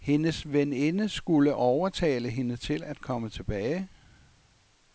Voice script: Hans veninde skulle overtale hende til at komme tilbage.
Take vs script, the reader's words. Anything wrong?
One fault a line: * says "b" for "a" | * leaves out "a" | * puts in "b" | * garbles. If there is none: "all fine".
* says "Hendes" for "Hans"